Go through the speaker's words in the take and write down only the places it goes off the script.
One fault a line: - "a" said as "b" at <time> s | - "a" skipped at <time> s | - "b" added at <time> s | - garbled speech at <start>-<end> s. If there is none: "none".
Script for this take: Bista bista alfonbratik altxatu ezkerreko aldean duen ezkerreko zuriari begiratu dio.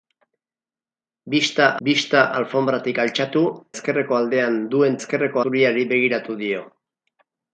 none